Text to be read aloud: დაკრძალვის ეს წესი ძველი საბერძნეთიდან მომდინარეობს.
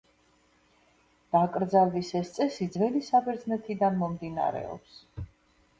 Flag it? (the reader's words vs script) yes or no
no